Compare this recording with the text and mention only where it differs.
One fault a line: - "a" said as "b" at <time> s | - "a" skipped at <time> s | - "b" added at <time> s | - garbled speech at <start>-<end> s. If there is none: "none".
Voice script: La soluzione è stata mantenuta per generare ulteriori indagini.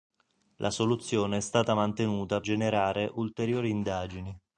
- "per" skipped at 2.4 s